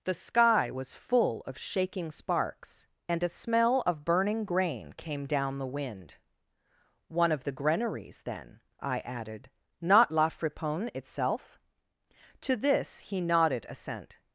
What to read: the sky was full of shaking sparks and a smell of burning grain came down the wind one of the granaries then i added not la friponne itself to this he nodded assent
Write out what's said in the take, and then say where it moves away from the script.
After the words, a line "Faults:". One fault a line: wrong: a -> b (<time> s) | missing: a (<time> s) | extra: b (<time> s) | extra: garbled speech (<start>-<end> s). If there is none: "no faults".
the sky was full of shaking sparks and a smell of burning grain came down the wind one of the granaries then i added not la friponne itself to this he nodded assent
Faults:
no faults